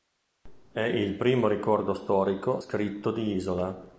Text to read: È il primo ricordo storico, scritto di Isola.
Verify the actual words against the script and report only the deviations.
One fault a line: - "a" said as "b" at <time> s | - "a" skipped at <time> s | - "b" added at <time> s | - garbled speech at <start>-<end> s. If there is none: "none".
none